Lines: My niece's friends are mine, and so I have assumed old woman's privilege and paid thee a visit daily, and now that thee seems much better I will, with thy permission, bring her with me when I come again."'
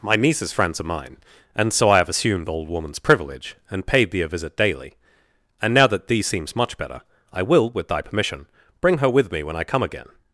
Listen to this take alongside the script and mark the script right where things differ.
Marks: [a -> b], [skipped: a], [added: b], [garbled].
My niece's friends are mine, and so I have assumed old woman's privilege and paid thee a visit daily, and now that thee seems much better I will, with thy permission, bring her with me when I come again."'